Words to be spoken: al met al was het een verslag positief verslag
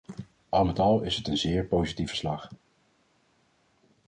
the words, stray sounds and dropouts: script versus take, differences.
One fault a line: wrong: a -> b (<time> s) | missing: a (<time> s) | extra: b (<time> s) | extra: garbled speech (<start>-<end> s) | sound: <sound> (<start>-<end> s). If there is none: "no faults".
wrong: was -> is (1.0 s)
wrong: verslag -> zeer (1.4 s)